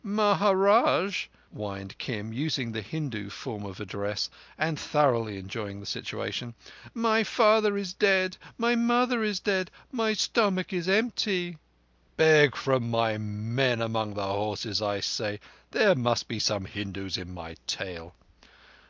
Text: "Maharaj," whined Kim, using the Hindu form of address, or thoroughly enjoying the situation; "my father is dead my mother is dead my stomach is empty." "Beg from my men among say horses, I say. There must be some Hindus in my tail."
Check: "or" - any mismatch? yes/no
yes